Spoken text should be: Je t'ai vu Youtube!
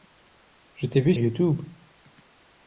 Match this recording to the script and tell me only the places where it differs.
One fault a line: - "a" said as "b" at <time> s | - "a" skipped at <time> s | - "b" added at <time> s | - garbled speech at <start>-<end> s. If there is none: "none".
none